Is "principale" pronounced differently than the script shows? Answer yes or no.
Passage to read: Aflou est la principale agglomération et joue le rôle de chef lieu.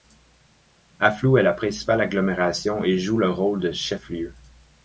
no